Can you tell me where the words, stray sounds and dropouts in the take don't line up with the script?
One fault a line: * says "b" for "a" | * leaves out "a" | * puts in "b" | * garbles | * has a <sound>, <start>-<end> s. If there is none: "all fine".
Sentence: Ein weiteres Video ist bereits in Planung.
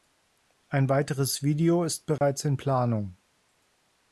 * has a dropout, 2.2-2.2 s